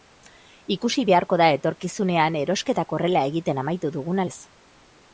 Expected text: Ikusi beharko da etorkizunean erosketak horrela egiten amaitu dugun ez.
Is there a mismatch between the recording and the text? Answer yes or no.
no